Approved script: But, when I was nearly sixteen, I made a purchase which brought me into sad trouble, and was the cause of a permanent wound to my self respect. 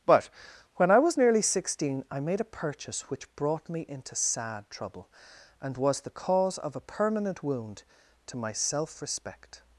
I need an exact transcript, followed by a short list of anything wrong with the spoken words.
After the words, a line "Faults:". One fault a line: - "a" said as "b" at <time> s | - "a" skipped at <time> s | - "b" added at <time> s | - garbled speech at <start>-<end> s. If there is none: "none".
But, when I was nearly sixteen, I made a purchase which brought me into sad trouble, and was the cause of a permanent wound to my self respect.
Faults:
none